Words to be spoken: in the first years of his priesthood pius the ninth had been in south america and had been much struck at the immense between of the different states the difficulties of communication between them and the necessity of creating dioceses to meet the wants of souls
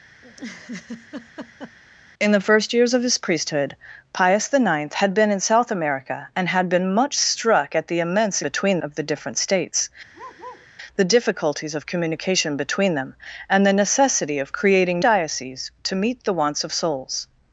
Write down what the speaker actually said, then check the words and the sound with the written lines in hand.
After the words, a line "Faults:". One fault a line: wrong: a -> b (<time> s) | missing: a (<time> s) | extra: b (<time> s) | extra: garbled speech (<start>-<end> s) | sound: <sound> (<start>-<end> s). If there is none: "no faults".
in the first years of his priesthood pius the ninth had been in south america and had been much struck at the immense between of the different states the difficulties of communication between them and the necessity of creating dioceses to meet the wants of souls
Faults:
sound: laugh (0.2-1.8 s)
sound: bark (10.1-10.7 s)